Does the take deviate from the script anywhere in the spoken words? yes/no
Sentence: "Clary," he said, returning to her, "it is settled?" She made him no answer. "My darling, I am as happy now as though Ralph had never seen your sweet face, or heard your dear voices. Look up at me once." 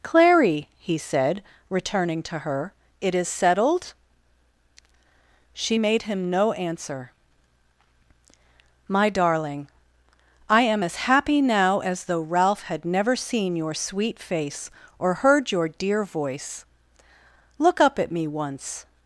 yes